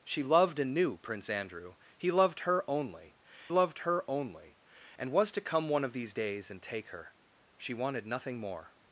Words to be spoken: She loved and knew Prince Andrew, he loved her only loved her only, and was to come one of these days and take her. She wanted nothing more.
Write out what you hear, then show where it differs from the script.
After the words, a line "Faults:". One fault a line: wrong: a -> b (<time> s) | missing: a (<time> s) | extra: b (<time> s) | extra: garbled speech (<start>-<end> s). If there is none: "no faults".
She loved and knew Prince Andrew, he loved her only loved her only, and was to come one of these days and take her. She wanted nothing more.
Faults:
no faults